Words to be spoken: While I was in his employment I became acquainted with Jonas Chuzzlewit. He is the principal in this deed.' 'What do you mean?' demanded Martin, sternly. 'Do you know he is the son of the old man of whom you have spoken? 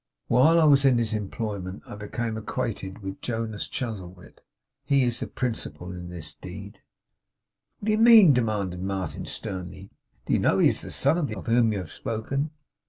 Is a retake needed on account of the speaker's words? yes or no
yes